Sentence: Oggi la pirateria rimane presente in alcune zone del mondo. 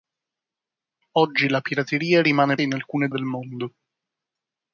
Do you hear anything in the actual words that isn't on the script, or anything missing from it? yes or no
yes